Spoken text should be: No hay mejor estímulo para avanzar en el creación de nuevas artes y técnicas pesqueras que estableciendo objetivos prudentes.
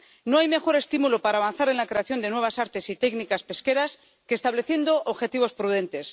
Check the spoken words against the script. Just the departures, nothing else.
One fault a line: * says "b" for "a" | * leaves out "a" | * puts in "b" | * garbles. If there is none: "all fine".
* says "la" for "el"